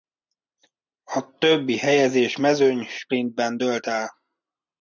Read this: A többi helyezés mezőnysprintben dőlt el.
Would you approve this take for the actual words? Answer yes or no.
yes